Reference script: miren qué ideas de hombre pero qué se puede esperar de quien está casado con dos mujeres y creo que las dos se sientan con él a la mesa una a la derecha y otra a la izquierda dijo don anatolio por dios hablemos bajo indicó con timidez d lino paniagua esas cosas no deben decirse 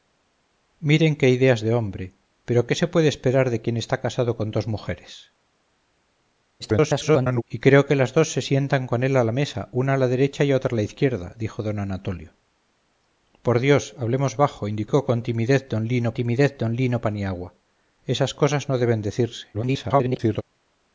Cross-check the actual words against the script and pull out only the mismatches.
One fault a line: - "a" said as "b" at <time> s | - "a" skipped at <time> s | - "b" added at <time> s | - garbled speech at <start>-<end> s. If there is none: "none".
- garbled speech at 6.6-7.4 s
- "timidez d lino" added at 16.1 s
- garbled speech at 19.5-20.4 s